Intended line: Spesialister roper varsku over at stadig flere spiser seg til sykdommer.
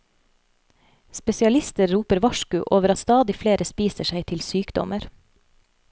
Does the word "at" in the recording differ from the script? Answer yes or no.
yes